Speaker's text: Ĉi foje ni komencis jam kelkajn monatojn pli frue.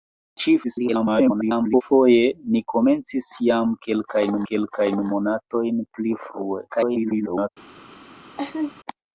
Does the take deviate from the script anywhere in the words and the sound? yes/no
yes